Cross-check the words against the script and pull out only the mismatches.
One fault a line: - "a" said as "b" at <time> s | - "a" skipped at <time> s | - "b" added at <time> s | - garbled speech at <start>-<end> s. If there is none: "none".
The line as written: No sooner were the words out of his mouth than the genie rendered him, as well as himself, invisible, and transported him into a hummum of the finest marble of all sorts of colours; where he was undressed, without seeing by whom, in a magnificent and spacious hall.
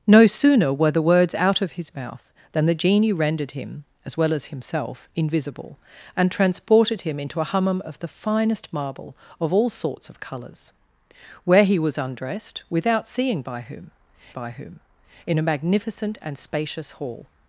- "by whom" added at 14.3 s